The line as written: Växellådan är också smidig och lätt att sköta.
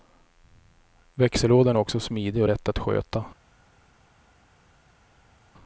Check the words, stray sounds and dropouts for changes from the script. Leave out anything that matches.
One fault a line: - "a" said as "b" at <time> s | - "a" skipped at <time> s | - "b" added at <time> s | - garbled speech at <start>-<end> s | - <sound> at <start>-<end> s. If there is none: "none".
none